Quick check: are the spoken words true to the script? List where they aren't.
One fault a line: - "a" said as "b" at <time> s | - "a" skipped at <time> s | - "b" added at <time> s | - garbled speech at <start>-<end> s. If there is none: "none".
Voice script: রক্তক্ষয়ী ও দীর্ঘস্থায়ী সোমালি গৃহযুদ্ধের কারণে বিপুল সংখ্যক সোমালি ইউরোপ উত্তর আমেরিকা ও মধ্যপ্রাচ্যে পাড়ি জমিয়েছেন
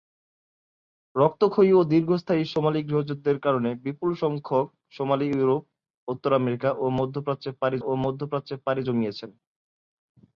- "ও মধ্যপ্রাচ্যে পাড়ি" added at 7.8 s